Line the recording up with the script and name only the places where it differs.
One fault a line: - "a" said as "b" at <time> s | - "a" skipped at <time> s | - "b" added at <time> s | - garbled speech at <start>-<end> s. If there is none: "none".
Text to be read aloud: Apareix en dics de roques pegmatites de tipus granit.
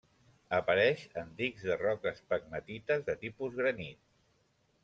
none